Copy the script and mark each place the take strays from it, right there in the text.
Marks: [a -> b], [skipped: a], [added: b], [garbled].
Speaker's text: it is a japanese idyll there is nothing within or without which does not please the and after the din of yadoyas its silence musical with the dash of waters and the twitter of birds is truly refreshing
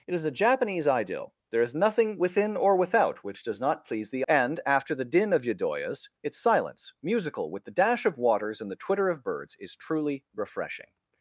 it is a japanese idyll there is nothing within or without which does not please the and after the din of yadoyas its silence musical with the dash of waters and the twitter of birds is truly refreshing